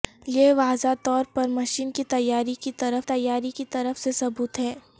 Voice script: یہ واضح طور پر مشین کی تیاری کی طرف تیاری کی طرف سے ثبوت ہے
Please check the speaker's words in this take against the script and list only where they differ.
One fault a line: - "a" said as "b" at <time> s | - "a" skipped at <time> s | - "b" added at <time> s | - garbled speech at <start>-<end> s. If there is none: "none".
none